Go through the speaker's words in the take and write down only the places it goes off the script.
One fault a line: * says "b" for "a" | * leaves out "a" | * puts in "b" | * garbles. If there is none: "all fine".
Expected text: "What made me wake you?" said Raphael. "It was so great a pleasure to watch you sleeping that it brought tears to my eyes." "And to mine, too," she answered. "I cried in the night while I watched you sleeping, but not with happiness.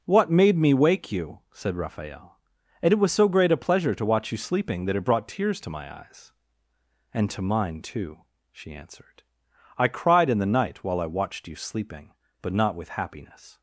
* puts in "and"